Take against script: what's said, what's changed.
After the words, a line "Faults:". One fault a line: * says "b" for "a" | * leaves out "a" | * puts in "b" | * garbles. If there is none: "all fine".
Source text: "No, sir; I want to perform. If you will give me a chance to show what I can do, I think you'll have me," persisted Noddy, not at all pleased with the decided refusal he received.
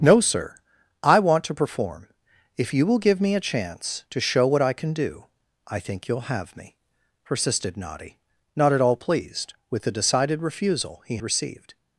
"No, sir; I want to perform. If you will give me a chance to show what I can do, I think you'll have me," persisted Noddy, not at all pleased with the decided refusal he received.
Faults:
all fine